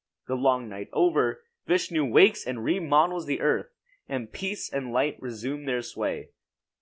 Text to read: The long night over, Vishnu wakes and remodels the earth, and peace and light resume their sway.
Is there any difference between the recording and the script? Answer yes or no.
no